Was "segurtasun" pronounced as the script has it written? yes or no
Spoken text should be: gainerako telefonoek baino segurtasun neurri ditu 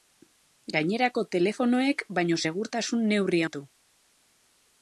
yes